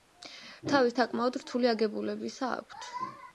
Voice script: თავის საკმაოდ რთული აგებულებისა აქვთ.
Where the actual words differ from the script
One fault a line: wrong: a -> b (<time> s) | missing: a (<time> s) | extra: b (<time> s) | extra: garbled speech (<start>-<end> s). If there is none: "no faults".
no faults